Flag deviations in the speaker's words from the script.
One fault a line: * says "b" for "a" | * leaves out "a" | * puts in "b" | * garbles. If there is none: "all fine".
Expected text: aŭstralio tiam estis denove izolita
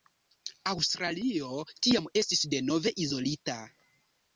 all fine